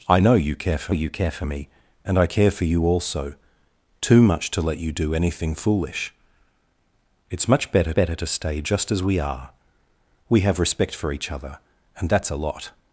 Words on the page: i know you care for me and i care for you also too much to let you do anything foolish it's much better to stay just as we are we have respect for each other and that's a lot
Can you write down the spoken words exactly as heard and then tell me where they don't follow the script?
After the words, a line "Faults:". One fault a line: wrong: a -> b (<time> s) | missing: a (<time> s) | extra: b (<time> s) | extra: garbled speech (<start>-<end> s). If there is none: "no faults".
i know you care for you care for me and i care for you also too much to let you do anything foolish it's much better better to stay just as we are we have respect for each other and that's a lot
Faults:
extra: you care for (0.9 s)
extra: better (7.9 s)